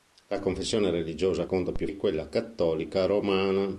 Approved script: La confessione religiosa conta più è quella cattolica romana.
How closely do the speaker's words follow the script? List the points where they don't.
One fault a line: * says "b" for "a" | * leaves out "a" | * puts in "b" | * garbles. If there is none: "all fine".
all fine